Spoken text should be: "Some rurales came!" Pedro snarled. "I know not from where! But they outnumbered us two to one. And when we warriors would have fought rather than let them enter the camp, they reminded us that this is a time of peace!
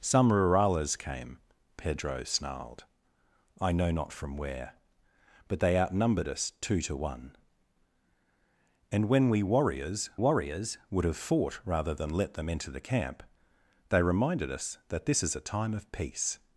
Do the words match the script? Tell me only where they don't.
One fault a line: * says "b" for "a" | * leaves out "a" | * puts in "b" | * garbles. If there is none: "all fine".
* puts in "warriors"